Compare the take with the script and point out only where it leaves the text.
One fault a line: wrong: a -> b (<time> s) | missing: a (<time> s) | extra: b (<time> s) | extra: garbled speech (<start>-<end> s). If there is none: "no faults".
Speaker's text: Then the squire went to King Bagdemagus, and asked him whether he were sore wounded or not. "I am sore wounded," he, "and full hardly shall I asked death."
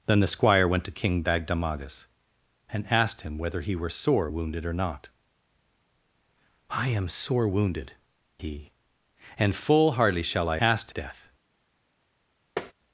no faults